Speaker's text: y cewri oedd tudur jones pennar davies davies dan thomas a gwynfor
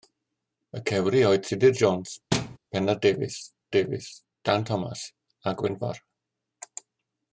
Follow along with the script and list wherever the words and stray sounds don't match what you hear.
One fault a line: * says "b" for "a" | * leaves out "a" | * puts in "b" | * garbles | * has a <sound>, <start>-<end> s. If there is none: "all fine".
* has a thud, 2.3-2.6 s